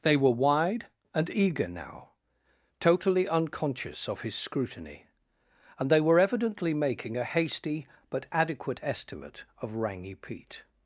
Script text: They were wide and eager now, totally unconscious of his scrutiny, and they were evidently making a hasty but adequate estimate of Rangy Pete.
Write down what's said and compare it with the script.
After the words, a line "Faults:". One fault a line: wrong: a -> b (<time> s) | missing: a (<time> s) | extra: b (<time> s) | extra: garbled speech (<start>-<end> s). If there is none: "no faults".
They were wide and eager now, totally unconscious of his scrutiny, and they were evidently making a hasty but adequate estimate of Rangy Pete.
Faults:
no faults